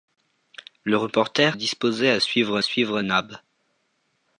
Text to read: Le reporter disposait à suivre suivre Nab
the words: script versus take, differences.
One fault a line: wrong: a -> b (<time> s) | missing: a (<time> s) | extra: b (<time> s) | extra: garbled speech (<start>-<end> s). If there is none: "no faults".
no faults